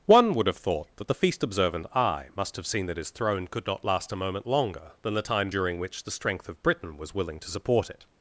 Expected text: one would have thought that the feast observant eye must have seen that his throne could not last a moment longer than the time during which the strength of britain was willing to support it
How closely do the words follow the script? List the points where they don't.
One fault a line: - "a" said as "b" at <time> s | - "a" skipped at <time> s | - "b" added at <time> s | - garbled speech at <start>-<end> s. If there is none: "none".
none